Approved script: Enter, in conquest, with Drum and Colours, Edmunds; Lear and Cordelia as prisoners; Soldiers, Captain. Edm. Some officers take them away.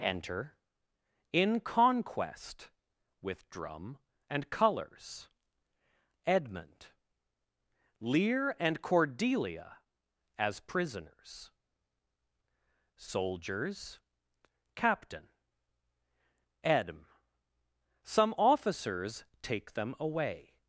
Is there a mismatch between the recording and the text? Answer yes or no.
yes